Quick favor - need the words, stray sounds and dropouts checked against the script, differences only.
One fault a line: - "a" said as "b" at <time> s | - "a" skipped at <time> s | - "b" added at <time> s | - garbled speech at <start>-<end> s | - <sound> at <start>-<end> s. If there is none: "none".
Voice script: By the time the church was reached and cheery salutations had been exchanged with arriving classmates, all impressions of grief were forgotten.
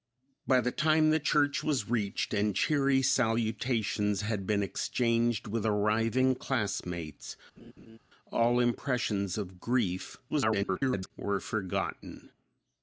- laugh at 7.6-8.0 s
- garbled speech at 10.3-11.1 s